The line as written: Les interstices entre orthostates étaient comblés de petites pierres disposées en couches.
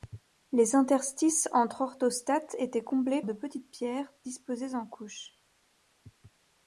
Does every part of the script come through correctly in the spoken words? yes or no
yes